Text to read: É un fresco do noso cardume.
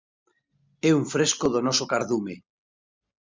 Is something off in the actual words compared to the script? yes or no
no